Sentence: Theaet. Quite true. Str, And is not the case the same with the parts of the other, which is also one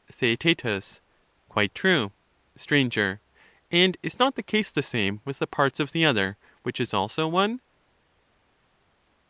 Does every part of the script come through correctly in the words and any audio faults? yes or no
yes